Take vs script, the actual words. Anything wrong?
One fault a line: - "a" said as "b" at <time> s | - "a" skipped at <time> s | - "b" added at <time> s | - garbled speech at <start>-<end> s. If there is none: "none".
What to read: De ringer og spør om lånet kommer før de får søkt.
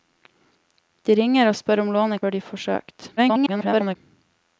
- "kommer" skipped at 2.2 s
- garbled speech at 3.2-4.0 s